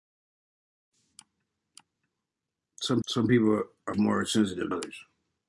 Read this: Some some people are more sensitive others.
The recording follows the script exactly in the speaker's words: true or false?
true